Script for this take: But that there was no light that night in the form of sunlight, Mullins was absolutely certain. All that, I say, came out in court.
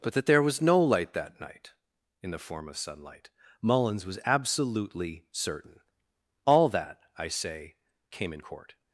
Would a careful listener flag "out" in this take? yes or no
yes